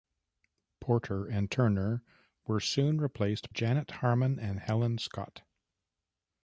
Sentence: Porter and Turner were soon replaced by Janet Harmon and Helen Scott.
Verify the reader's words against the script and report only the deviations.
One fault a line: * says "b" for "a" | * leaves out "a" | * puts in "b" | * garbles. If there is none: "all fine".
* leaves out "by"